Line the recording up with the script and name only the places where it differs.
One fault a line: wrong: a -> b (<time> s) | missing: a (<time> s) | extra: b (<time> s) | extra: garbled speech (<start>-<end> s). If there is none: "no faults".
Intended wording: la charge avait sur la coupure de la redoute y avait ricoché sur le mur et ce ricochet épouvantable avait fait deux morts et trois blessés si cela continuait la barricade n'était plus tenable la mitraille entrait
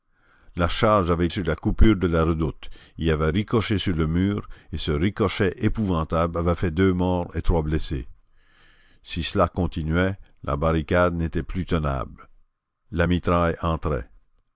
no faults